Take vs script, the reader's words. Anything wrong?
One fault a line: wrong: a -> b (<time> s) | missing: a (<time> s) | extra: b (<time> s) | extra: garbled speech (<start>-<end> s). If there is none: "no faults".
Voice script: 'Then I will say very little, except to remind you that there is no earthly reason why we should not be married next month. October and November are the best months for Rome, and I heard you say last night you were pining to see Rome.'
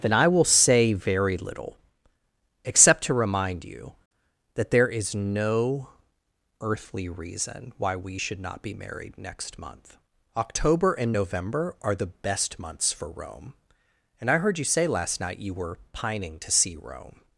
no faults